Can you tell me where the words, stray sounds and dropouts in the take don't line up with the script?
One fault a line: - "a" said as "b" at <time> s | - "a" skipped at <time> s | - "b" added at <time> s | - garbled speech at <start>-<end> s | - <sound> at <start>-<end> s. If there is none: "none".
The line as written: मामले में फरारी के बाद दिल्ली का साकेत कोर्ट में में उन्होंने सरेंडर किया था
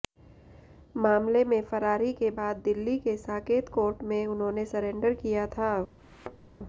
- "का" said as "के" at 3.0 s
- "में" skipped at 4.3 s
- thud at 6.0-6.5 s